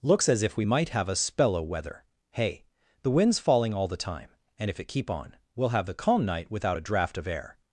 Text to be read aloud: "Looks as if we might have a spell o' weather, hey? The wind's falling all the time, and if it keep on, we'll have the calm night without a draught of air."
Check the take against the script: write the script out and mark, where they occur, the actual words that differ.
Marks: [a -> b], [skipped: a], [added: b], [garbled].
"Looks as if we might have a spell o' weather, hey? The wind's falling all the time, and if it keep on, we'll have the calm night without a draught of air."